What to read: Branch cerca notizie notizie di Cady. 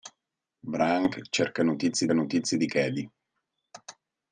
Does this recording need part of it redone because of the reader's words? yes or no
no